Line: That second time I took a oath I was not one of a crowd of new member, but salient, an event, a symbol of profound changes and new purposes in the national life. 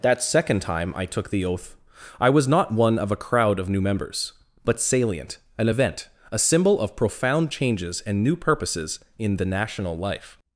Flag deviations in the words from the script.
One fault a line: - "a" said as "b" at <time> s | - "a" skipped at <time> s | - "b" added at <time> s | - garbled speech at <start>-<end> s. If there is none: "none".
- "a" said as "the" at 1.3 s
- "member" said as "members" at 3.8 s